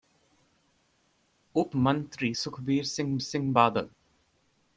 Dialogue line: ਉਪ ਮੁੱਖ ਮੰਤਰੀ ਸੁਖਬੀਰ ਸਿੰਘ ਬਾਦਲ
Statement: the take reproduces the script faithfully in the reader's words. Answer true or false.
false